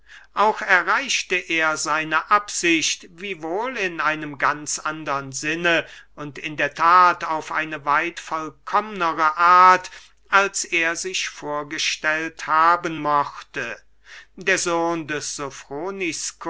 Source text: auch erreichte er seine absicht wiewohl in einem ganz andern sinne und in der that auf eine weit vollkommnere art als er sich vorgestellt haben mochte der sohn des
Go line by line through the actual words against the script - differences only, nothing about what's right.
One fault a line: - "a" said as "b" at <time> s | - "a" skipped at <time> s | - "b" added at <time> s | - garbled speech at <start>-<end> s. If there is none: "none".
none